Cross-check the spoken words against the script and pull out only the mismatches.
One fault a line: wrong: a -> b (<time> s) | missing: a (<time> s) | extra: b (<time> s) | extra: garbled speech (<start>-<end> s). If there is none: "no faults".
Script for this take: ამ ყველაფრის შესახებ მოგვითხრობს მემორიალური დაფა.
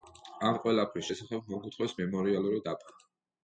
no faults